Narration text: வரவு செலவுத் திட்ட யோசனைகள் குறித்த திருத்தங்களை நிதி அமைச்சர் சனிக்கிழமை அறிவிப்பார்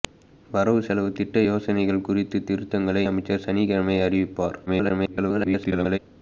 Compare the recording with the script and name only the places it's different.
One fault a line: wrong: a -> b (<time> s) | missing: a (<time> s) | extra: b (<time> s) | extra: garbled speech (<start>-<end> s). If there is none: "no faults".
missing: நிதி (3.0 s)
extra: garbled speech (4.7-6.0 s)